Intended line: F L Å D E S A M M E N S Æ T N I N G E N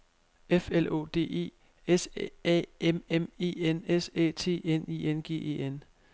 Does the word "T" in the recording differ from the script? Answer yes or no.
no